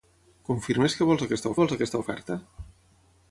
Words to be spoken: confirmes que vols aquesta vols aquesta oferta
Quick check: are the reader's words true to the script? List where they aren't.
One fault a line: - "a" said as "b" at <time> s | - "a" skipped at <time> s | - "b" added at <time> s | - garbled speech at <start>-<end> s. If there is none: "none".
none